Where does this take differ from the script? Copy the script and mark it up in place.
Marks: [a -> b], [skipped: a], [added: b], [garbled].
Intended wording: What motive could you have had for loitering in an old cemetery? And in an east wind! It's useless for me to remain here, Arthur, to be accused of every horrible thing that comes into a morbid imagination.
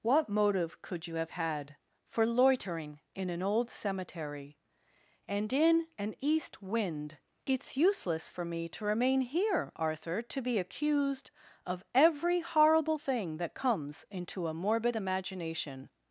What motive could you have had for loitering in an old cemetery? And in an east wind! It's useless for me to remain here, Arthur, to be accused of every horrible thing that comes into a morbid imagination.